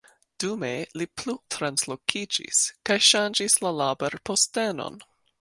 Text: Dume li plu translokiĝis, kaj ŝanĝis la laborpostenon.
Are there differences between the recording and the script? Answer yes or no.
no